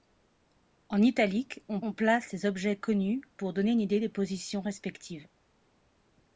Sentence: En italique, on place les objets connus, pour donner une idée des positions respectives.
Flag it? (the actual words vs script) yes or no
yes